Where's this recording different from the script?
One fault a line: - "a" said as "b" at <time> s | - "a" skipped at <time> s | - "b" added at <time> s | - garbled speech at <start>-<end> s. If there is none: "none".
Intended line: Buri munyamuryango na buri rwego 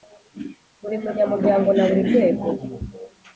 none